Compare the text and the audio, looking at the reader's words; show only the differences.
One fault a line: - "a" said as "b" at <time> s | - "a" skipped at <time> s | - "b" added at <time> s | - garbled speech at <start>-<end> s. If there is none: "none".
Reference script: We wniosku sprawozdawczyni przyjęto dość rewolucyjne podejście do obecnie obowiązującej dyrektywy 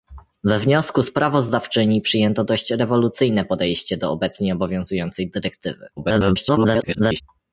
- garbled speech at 6.0-7.2 s